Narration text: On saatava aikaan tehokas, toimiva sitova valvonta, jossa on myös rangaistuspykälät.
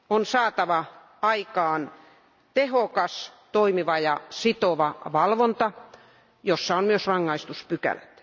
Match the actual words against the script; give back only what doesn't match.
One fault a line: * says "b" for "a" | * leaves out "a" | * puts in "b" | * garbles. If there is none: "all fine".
* puts in "ja"